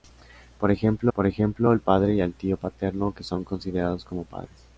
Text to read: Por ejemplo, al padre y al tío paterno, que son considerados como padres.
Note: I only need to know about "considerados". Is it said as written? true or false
true